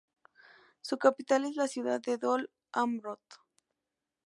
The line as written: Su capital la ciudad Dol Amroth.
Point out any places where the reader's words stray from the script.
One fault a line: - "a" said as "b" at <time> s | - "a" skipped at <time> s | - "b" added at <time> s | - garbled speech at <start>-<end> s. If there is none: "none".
- "es" added at 1.4 s
- "de" added at 2.0 s